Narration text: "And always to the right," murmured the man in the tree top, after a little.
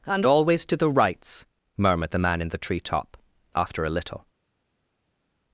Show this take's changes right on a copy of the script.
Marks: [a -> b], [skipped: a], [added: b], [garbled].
"And always to the [right," -> rights] murmured the man in the tree top, after a little.